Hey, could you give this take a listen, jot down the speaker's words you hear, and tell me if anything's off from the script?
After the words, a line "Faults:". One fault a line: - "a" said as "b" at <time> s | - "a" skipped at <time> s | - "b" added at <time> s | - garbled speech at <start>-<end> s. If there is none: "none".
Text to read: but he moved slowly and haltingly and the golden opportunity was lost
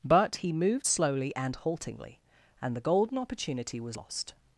but he moved slowly and haltingly and the golden opportunity was lost
Faults:
none